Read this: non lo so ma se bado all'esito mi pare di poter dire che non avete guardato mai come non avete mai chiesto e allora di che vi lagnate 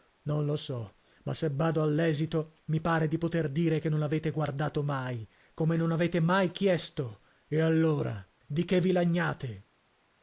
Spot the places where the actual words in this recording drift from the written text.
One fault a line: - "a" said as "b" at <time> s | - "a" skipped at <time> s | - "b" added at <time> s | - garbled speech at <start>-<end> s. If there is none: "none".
none